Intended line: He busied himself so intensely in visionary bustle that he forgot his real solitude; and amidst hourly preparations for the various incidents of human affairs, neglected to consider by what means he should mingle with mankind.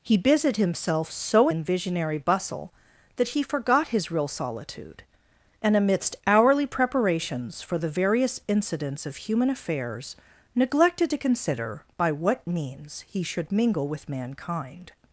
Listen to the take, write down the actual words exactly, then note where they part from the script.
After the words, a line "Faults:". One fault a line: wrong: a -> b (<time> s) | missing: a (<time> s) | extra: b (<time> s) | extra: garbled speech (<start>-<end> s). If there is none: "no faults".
He busied himself so in visionary bustle that he forgot his real solitude; and amidst hourly preparations for the various incidents of human affairs, neglected to consider by what means he should mingle with mankind.
Faults:
missing: intensely (1.5 s)